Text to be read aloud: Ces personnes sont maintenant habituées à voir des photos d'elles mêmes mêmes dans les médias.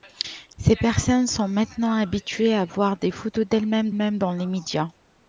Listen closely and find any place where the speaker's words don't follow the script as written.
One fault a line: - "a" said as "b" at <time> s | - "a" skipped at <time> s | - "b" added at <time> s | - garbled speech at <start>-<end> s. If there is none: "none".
none